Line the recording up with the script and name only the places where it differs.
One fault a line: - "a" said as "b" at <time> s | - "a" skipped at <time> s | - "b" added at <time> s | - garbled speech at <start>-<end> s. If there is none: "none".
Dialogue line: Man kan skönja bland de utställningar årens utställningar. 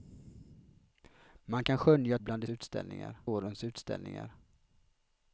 none